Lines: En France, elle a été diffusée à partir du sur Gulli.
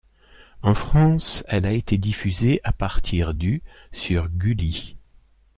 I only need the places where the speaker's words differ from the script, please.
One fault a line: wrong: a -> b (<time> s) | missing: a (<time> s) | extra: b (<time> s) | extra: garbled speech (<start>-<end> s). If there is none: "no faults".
no faults